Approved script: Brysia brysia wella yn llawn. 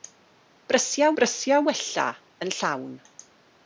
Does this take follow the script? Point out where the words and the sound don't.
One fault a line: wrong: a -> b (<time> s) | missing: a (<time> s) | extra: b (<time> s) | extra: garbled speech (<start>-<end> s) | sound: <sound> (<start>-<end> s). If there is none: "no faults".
no faults